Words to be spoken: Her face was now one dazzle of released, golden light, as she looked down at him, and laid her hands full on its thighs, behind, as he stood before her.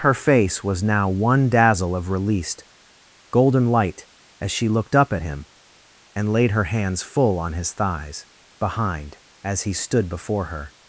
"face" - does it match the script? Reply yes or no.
yes